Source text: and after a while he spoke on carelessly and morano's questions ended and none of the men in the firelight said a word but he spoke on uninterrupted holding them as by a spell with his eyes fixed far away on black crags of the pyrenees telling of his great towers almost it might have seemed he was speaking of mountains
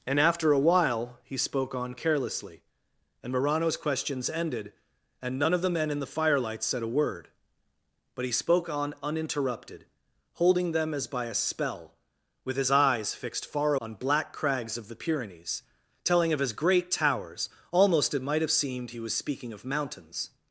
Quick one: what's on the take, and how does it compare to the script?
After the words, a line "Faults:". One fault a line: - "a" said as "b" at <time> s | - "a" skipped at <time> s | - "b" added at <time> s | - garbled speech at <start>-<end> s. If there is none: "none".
and after a while he spoke on carelessly and morano's questions ended and none of the men in the firelight said a word but he spoke on uninterrupted holding them as by a spell with his eyes fixed far on black crags of the pyrenees telling of his great towers almost it might have seemed he was speaking of mountains
Faults:
- "away" skipped at 13.8 s